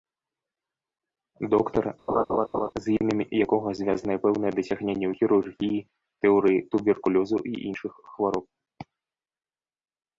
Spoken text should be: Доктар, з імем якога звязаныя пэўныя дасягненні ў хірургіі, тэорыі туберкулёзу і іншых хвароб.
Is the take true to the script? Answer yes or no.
yes